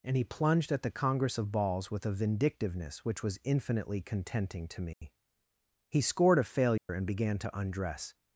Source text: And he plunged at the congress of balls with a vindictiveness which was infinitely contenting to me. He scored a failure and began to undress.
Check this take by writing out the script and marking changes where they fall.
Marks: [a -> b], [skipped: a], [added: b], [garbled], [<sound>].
And he plunged at the congress of balls with a vindictiveness which was infinitely contenting to me. [dropout] He scored a failure [dropout] and began to undress.